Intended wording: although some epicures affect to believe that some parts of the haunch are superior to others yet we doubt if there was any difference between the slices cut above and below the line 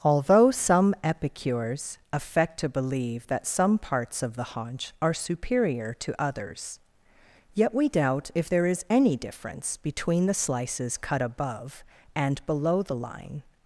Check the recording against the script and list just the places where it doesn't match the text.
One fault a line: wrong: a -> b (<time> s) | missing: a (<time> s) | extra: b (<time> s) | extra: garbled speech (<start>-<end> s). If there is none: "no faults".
wrong: was -> is (8.6 s)